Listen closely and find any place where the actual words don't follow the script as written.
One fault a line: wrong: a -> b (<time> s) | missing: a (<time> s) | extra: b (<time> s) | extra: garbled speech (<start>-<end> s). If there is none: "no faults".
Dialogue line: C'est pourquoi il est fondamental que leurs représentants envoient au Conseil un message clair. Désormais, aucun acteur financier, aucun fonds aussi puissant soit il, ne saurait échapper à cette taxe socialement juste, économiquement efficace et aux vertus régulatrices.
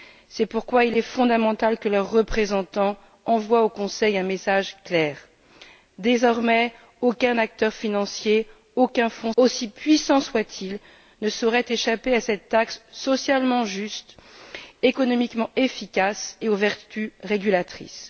no faults